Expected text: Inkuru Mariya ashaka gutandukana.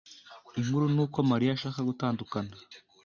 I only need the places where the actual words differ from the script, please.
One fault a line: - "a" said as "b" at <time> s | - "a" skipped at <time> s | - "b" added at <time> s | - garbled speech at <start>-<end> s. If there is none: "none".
- "nuko" added at 0.9 s